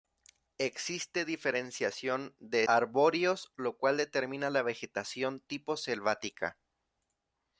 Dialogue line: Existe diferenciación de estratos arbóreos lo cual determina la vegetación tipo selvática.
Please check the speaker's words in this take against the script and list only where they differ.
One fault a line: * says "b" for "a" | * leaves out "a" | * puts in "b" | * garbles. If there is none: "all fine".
* leaves out "estratos"